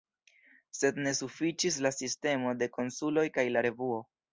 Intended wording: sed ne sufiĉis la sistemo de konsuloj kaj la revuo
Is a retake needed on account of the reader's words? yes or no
no